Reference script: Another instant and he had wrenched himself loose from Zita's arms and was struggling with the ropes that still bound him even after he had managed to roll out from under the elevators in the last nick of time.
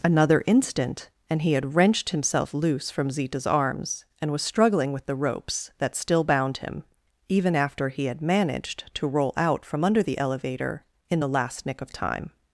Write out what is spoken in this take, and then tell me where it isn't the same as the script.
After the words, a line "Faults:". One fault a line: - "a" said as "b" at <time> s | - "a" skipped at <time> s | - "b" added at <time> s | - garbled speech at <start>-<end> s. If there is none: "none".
Another instant and he had wrenched himself loose from Zita's arms and was struggling with the ropes that still bound him even after he had managed to roll out from under the elevator in the last nick of time.
Faults:
- "elevators" said as "elevator" at 10.2 s